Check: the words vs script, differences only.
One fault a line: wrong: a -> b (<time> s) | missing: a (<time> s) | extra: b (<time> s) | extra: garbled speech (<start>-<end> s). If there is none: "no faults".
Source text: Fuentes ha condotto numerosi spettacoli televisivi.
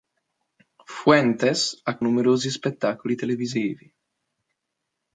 missing: condotto (2.0 s)